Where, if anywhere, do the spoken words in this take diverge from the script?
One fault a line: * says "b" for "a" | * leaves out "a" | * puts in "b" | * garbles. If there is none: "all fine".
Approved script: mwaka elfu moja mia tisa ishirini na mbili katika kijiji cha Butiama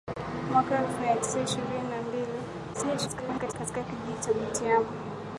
* leaves out "moja"
* garbles